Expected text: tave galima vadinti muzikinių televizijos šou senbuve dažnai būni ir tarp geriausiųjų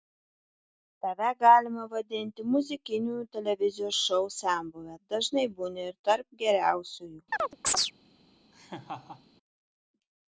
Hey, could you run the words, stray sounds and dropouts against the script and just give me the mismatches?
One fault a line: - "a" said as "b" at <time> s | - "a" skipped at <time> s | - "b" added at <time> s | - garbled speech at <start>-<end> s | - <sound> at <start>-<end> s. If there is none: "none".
- chirp at 7.3-7.9 s
- laugh at 8.5-9.3 s